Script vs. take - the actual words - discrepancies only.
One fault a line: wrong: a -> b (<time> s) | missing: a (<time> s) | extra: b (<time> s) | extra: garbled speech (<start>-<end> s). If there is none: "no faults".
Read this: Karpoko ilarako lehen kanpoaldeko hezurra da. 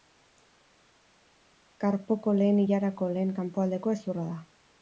extra: lehen (2.4 s)